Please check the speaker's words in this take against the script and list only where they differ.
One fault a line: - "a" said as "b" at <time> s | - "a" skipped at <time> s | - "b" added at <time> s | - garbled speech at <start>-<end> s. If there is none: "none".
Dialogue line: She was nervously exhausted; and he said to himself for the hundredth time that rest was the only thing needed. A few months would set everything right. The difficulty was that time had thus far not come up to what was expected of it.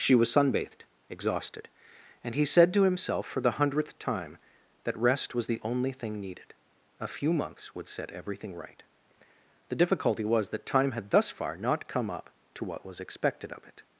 - "nervously" said as "sunbathed" at 0.3 s